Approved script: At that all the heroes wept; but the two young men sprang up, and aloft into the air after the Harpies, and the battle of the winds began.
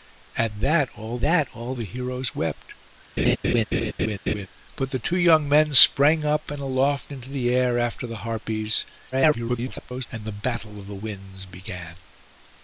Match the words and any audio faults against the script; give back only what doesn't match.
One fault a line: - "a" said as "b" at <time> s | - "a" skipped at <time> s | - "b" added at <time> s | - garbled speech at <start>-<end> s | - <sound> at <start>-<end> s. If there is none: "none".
- "that all" added at 1.2 s
- laugh at 3.2-4.5 s
- garbled speech at 9.1-10.1 s